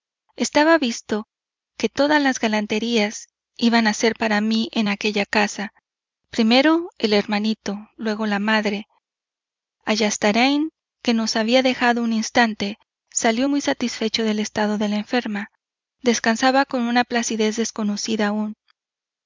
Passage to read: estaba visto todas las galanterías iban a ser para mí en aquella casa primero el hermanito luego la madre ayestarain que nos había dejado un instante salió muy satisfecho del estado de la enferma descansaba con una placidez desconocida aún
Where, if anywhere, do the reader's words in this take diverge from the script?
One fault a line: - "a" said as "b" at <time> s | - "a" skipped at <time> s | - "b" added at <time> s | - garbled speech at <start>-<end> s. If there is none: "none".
- "que" added at 1.8 s